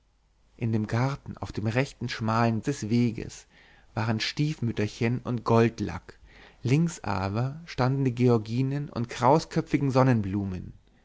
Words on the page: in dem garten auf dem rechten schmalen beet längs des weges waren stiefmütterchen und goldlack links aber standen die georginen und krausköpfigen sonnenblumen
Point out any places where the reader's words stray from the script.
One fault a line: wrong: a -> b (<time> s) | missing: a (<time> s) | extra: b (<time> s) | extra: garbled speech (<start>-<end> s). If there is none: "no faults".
missing: beet längs (2.6 s)